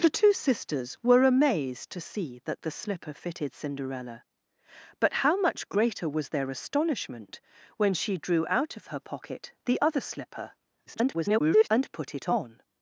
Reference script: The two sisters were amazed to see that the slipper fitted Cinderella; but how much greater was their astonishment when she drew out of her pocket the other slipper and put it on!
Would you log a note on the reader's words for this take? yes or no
yes